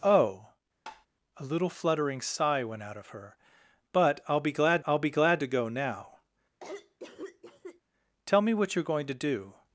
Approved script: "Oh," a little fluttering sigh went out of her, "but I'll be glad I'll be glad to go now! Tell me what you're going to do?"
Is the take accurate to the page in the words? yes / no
yes